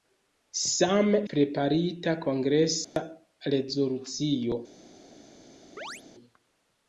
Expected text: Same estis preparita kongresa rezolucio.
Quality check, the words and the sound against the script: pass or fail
fail